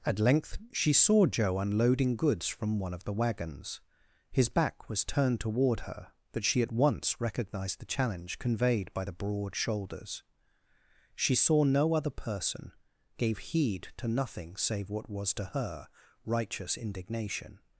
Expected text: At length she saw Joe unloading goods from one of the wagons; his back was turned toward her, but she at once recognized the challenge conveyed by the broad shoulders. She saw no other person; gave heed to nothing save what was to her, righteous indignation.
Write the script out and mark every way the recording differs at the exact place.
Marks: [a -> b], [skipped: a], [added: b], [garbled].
At length she saw Joe unloading goods from one of the wagons; his back was turned toward her, but she at once recognized the challenge conveyed by the broad shoulders. She saw no other person; gave heed to nothing save what was to her, righteous indignation.